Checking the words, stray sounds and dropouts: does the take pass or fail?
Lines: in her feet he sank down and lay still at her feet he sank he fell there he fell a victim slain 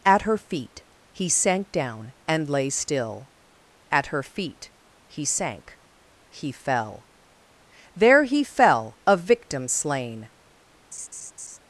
fail